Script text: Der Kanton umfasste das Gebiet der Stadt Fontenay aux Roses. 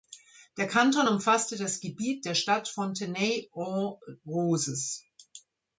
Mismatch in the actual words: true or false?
false